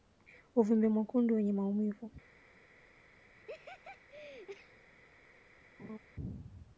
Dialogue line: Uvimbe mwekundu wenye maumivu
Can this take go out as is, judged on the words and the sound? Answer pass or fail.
fail